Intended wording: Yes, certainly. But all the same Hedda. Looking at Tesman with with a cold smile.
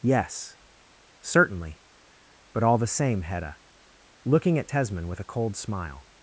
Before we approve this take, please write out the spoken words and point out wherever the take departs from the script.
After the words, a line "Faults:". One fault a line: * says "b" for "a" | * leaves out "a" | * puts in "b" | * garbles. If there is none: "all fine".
Yes, certainly. But all the same Hedda. Looking at Tesman with a cold smile.
Faults:
* leaves out "with"